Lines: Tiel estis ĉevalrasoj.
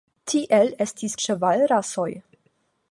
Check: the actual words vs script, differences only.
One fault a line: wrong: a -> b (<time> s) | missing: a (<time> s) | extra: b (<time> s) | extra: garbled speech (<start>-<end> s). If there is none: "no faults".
no faults